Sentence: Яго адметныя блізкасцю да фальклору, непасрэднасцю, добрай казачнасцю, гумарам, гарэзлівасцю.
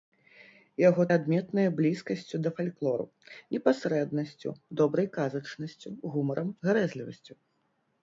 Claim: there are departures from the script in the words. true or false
false